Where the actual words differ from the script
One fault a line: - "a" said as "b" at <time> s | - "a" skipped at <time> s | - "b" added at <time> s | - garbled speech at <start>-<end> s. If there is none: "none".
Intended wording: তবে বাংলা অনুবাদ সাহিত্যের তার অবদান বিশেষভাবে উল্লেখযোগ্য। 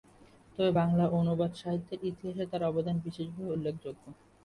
- "ইতিহাসে" added at 2.1 s